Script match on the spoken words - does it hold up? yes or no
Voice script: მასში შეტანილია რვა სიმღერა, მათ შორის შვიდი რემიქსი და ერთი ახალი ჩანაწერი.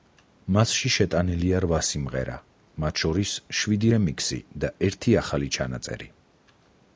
yes